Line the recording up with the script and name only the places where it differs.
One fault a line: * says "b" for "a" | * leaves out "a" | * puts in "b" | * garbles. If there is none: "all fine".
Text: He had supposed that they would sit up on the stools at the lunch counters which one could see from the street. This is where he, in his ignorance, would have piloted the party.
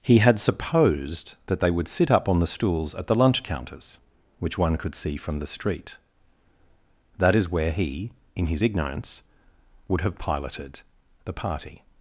* says "That" for "This"